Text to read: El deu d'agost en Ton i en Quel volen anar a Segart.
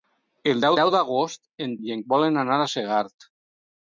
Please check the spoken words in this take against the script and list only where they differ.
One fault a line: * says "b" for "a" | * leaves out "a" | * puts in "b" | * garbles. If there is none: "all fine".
* puts in "deu"
* leaves out "Ton"
* leaves out "Quel"